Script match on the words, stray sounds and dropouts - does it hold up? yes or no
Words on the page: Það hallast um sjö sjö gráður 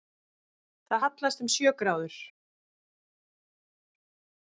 no